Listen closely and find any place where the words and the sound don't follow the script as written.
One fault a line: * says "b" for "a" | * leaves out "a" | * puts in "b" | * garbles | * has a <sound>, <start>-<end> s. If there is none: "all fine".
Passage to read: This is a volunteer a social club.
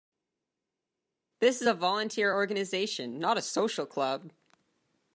* puts in "organization not"